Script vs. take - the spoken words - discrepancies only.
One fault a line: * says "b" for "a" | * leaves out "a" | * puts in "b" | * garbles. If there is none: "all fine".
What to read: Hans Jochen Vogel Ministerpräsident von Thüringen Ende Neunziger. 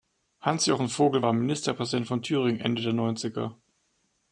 * puts in "war"
* puts in "der"